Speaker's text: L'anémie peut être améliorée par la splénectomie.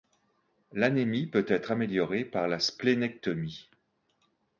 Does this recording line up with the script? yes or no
yes